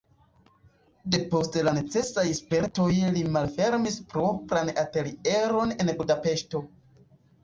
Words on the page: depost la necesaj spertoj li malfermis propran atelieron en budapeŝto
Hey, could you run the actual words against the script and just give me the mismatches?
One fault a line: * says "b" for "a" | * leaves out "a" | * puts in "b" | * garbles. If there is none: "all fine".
all fine